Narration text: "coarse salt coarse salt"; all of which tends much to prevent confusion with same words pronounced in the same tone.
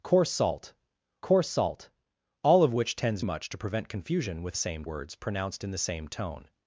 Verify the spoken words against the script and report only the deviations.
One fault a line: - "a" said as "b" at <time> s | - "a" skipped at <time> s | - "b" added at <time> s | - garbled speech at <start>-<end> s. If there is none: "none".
none